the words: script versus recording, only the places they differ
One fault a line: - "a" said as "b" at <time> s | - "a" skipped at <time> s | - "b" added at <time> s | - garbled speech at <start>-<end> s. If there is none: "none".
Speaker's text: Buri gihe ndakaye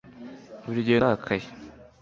none